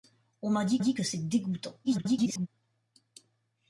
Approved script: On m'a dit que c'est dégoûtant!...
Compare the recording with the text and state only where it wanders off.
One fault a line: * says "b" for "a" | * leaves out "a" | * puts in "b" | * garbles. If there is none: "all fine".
* puts in "dit"
* garbles